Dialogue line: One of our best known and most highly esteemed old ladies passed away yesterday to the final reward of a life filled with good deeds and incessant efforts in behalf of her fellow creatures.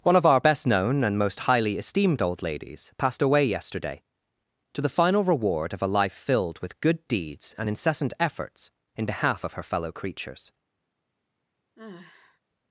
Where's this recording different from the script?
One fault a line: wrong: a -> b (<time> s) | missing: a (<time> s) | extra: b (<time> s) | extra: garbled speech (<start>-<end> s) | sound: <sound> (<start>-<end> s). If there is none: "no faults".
sound: sigh (11.8-12.4 s)